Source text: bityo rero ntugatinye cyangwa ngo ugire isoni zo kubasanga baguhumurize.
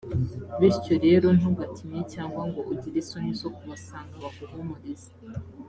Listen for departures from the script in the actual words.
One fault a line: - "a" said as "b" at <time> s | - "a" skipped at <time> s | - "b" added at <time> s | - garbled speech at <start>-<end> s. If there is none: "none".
none